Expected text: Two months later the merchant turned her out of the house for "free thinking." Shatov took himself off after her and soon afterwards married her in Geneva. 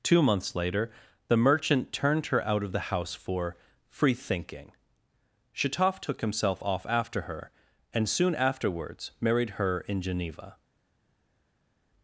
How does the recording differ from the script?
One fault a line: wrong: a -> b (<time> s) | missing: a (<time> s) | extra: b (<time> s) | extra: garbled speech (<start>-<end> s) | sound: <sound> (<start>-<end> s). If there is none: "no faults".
no faults